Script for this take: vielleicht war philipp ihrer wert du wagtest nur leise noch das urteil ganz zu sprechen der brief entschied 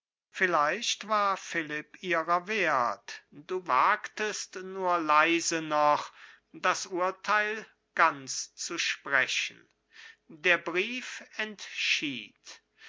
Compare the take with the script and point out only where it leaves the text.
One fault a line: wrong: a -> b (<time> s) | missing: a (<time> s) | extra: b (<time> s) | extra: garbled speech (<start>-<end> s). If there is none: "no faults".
no faults